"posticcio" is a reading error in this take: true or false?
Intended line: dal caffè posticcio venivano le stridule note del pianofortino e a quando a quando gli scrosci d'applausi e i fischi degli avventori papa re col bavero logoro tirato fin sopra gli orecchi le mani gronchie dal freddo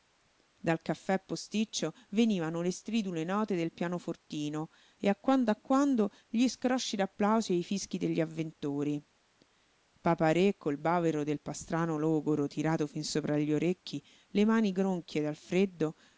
false